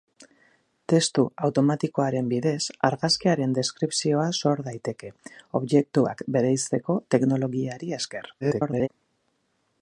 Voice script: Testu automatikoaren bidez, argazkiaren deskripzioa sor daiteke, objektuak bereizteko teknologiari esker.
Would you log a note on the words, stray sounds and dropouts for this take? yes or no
yes